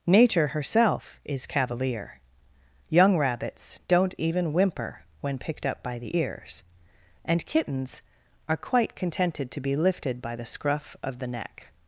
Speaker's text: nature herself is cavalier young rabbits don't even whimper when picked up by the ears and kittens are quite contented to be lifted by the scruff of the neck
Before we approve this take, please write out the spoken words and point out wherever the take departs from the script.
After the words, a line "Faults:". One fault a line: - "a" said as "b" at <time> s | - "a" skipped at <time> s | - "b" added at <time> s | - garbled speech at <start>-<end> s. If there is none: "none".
nature herself is cavalier young rabbits don't even whimper when picked up by the ears and kittens are quite contented to be lifted by the scruff of the neck
Faults:
none